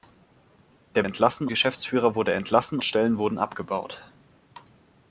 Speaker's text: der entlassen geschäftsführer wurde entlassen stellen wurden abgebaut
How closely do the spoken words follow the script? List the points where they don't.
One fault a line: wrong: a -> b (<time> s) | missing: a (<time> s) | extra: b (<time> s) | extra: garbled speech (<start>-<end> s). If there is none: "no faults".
no faults